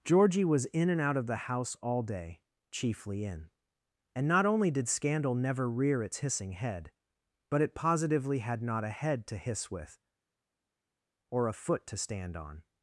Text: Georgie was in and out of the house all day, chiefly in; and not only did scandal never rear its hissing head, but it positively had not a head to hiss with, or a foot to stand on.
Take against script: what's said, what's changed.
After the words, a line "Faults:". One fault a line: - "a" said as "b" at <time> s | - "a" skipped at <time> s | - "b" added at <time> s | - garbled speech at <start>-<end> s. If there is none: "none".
Georgie was in and out of the house all day, chiefly in; and not only did scandal never rear its hissing head, but it positively had not a head to hiss with, or a foot to stand on.
Faults:
none